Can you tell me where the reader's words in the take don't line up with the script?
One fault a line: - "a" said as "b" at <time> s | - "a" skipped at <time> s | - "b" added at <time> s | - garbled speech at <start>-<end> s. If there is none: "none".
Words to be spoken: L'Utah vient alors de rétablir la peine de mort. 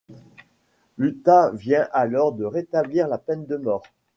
none